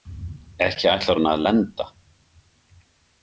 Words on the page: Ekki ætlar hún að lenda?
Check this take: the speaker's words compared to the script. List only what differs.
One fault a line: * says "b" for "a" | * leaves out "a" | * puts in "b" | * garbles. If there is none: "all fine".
all fine